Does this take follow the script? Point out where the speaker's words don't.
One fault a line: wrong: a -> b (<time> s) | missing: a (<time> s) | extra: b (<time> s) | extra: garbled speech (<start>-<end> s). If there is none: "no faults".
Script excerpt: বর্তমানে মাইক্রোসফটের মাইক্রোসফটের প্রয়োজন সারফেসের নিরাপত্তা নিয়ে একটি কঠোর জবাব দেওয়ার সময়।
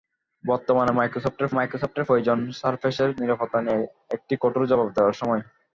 no faults